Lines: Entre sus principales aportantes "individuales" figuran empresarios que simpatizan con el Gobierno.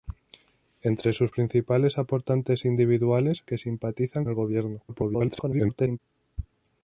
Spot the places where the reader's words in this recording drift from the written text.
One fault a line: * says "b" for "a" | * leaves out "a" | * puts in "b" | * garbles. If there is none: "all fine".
* leaves out "figuran empresarios"
* leaves out "con"
* garbles